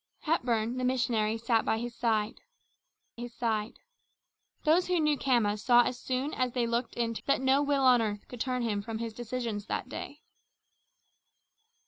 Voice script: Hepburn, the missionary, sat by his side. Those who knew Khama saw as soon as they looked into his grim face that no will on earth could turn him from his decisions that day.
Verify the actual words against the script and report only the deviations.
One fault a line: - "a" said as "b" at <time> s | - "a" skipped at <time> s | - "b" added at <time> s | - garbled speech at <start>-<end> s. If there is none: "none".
- "his side" added at 3.2 s
- "his grim face" skipped at 7.2 s